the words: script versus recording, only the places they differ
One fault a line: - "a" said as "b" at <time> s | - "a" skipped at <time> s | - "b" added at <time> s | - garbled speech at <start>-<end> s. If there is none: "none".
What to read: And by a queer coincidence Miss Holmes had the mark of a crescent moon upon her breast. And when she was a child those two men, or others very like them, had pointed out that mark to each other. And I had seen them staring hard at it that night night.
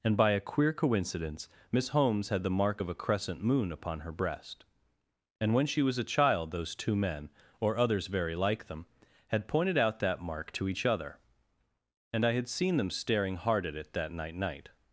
none